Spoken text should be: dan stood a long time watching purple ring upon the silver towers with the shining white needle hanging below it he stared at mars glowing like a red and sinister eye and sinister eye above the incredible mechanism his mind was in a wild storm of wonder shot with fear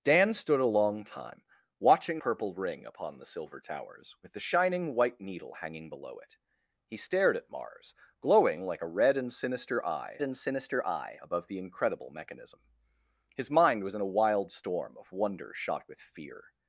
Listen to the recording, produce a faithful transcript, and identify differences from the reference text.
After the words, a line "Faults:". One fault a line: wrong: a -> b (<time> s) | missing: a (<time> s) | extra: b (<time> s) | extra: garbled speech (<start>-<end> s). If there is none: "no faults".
dan stood a long time watching purple ring upon the silver towers with the shining white needle hanging below it he stared at mars glowing like a red and sinister eye and sinister eye above the incredible mechanism his mind was in a wild storm of wonder shot with fear
Faults:
no faults